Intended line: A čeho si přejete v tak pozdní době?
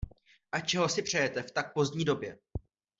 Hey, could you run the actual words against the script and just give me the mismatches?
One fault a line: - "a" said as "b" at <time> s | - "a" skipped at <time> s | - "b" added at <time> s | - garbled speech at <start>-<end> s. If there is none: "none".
none